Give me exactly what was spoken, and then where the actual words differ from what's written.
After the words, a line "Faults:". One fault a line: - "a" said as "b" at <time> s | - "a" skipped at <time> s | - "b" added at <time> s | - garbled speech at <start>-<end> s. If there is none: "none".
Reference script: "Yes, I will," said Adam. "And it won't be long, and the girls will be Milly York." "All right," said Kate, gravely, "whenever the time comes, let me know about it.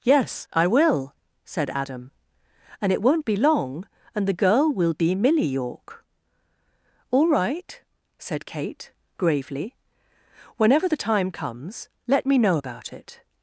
"Yes, I will," said Adam. "And it won't be long, and the girl will be Milly York." "All right," said Kate, gravely, "whenever the time comes, let me know about it.
Faults:
- "girls" said as "girl" at 4.3 s